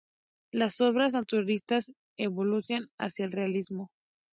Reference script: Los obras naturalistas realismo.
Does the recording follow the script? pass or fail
fail